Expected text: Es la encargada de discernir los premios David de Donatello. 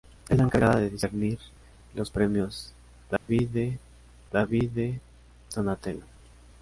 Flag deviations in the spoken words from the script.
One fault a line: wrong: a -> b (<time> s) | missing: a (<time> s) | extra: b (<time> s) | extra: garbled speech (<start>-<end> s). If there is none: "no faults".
extra: David de (4.3 s)